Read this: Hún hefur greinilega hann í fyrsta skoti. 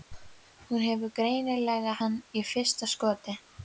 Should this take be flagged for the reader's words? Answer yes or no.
no